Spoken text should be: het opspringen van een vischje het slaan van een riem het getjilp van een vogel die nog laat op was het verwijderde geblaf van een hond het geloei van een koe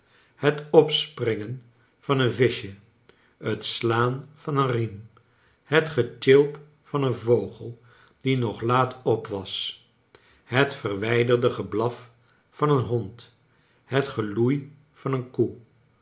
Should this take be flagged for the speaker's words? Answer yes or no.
no